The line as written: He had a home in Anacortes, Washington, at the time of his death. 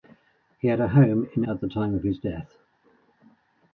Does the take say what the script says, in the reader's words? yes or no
no